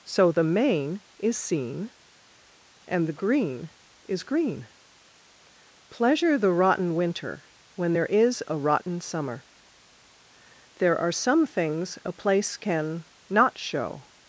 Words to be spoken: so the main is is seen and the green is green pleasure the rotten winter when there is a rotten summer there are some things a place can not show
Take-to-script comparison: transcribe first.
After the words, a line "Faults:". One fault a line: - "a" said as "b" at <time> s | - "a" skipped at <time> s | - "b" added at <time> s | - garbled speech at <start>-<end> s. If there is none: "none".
so the main is seen and the green is green pleasure the rotten winter when there is a rotten summer there are some things a place can not show
Faults:
- "is" skipped at 1.4 s